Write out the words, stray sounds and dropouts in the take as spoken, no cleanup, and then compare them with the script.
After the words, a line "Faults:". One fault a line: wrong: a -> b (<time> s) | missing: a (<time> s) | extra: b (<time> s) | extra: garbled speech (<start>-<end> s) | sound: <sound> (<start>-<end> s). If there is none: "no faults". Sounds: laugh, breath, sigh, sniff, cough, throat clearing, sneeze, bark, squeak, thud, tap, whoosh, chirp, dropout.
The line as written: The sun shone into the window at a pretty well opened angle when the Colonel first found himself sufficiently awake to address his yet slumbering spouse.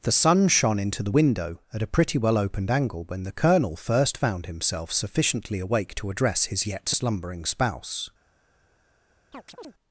The sun shone into the window at a pretty well opened angle when the Colonel first found himself sufficiently awake to address his yet slumbering spouse.
Faults:
sound: chirp (9.3-9.7 s)